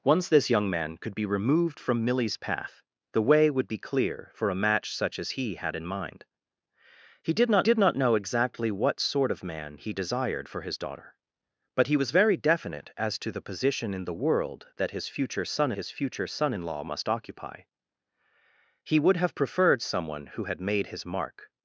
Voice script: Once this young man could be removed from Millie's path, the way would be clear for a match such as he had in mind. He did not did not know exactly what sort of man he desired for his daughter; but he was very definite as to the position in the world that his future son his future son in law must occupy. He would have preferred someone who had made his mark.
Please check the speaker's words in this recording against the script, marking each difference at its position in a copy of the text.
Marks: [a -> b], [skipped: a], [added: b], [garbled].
Once this young man could be removed from Millie's path, the way would be clear for a match such as he had in mind. He did not did not know exactly what sort of man he desired for his daughter; but he was very definite as to the position in the world that his future son his future son in law must occupy. He would have preferred someone who had made his mark.